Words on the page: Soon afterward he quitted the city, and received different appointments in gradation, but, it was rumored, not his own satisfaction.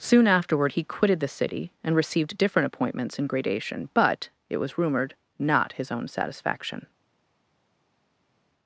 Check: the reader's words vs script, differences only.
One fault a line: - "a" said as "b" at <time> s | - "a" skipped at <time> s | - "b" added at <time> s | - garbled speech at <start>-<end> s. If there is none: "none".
none